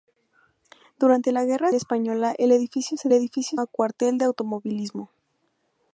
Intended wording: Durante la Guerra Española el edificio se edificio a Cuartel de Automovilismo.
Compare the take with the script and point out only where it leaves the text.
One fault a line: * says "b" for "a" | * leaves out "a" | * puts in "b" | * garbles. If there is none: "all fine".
all fine